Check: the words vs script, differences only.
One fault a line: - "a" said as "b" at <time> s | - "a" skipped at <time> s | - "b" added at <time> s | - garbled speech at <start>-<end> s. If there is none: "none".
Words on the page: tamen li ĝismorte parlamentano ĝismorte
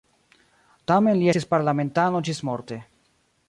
- "ĝismorte" said as "estis" at 1.3 s